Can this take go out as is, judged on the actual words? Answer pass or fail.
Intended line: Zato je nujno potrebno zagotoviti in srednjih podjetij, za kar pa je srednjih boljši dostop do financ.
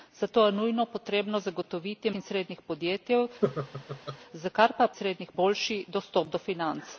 pass